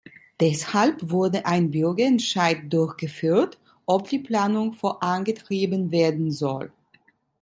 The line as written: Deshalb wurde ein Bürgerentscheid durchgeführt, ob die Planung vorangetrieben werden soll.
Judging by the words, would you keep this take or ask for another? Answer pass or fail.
pass